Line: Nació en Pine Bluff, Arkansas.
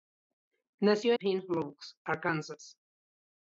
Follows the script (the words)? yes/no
no